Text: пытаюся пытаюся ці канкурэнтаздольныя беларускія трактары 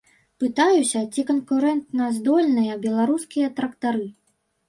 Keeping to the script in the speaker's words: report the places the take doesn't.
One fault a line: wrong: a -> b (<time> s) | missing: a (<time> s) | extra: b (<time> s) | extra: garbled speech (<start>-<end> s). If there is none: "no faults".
missing: пытаюся (1.0 s)